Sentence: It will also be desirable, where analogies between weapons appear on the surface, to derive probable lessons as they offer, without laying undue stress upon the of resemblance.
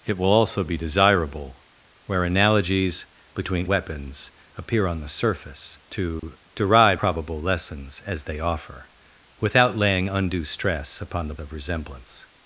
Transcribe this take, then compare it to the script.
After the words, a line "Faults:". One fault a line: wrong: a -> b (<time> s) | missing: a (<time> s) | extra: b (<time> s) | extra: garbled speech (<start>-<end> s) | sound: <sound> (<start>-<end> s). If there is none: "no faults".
It will also be desirable, where analogies between weapons appear on the surface, to derive probable lessons as they offer, without laying undue stress upon the of resemblance.
Faults:
sound: dropout (6.2-6.2 s)